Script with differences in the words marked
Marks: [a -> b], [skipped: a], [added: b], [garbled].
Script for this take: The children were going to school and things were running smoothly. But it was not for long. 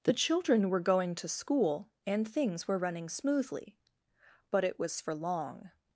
The children were going to school and things were running smoothly. But it was [skipped: not] for long.